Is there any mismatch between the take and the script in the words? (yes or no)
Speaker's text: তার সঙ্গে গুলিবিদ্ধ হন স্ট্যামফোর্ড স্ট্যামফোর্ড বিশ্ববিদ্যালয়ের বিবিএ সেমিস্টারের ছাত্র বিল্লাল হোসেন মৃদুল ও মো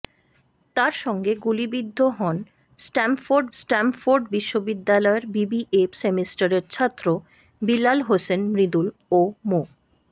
no